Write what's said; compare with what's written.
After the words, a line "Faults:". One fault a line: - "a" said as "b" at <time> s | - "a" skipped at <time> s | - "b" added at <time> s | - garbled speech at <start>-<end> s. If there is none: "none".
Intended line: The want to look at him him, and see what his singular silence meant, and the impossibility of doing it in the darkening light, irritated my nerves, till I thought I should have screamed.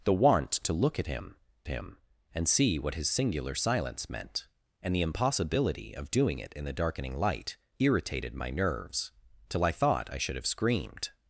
The want to look at him him, and see what his singular silence meant, and the impossibility of doing it in the darkening light, irritated my nerves, till I thought I should have screamed.
Faults:
none